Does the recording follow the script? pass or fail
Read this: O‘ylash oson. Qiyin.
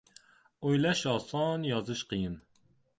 fail